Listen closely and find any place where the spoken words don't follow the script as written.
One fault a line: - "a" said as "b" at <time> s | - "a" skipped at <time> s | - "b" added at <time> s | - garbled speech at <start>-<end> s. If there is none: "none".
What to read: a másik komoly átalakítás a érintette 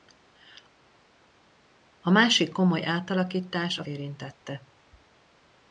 none